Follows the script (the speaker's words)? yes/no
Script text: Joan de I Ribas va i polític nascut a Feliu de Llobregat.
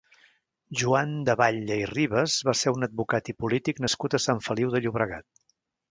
no